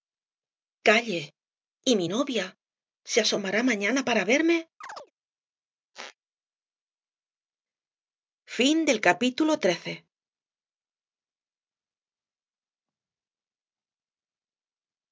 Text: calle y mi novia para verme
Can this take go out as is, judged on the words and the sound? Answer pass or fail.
fail